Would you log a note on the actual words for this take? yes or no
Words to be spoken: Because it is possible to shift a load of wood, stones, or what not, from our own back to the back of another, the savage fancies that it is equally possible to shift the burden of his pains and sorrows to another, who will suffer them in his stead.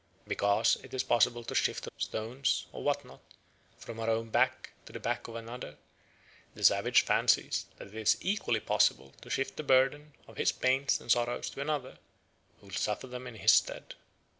yes